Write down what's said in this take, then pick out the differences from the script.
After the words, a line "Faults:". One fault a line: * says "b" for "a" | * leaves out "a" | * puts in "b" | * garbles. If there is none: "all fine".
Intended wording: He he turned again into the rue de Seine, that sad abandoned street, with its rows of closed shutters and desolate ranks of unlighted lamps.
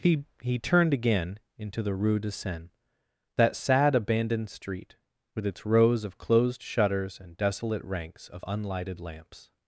He he turned again into the rue de Seine, that sad abandoned street, with its rows of closed shutters and desolate ranks of unlighted lamps.
Faults:
all fine